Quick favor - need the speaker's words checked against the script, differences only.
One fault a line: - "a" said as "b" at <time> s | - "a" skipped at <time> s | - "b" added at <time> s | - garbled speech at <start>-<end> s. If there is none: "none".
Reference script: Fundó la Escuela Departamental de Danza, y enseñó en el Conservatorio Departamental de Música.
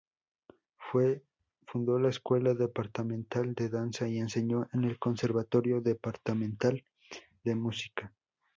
none